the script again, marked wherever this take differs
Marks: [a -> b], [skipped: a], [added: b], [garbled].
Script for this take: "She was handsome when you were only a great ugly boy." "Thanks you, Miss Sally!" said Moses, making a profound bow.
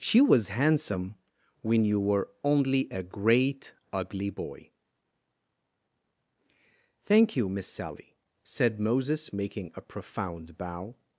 "She was handsome when you were only a great ugly boy." ["Thanks -> Thank] you, Miss Sally!" said Moses, making a profound bow.